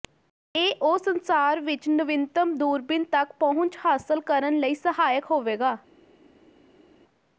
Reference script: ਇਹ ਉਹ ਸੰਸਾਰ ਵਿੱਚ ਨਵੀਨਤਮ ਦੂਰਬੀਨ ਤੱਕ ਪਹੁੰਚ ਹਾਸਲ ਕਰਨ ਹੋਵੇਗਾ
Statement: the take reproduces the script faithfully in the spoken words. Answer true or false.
false